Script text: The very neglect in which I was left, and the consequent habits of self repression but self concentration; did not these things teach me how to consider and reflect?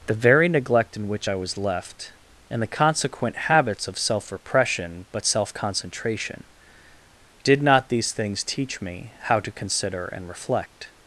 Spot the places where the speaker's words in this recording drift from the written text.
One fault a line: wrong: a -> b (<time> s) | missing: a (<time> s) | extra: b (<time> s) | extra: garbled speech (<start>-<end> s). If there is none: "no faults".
no faults